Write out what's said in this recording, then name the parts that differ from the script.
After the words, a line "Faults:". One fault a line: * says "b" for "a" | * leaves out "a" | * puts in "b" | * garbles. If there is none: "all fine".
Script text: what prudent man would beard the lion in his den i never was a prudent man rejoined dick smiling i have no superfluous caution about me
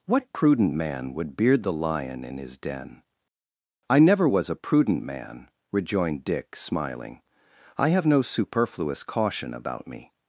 what prudent man would beard the lion in his den i never was a prudent man rejoined dick smiling i have no superfluous caution about me
Faults:
all fine